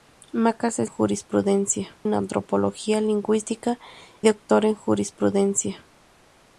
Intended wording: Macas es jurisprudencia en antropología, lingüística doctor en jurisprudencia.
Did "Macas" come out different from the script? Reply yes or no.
no